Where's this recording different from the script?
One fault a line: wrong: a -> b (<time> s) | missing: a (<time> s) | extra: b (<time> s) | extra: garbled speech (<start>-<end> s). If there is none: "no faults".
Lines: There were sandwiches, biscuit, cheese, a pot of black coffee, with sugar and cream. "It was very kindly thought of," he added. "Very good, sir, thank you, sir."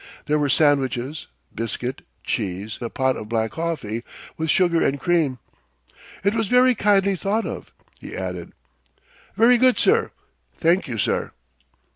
no faults